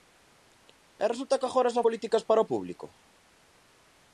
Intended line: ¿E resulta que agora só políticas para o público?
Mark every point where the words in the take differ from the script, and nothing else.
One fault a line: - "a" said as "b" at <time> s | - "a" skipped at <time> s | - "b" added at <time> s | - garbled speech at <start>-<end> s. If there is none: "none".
none